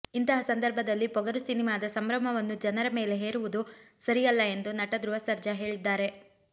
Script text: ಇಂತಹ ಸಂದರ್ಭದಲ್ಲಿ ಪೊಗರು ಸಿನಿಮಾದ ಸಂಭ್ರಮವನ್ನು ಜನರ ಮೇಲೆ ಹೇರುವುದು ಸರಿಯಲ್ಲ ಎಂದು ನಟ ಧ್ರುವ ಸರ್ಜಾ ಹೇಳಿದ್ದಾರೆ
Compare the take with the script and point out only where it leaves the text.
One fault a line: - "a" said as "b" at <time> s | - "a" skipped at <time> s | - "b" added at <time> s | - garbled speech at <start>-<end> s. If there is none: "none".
none